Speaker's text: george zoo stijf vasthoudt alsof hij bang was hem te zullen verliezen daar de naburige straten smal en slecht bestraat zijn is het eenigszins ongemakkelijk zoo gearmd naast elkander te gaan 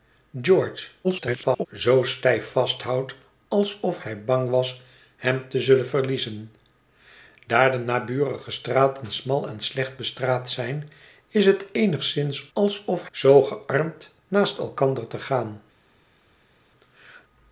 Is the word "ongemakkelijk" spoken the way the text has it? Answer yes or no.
no